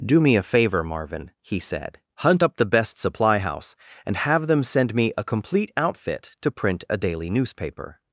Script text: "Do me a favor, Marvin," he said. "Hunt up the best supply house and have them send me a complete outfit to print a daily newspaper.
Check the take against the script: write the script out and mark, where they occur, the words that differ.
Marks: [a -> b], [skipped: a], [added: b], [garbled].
"Do me a favor, Marvin," he said. "Hunt up the best supply house and have them send me a complete outfit to print a daily newspaper.